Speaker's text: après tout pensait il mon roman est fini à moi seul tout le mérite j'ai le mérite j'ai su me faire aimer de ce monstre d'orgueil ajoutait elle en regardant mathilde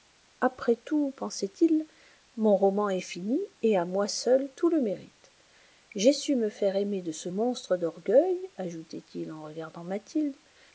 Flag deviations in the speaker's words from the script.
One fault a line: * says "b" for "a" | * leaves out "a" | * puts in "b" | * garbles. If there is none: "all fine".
* puts in "et"
* leaves out "le mérite j'ai"
* says "il" for "elle"